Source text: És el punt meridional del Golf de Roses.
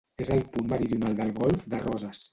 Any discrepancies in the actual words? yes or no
no